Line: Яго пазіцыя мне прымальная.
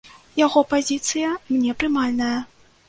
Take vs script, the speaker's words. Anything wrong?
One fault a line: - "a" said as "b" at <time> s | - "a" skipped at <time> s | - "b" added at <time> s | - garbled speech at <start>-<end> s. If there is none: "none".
none